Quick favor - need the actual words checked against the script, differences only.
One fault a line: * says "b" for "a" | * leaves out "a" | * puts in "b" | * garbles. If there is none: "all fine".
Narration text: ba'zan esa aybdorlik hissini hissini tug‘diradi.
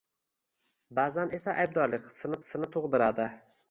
all fine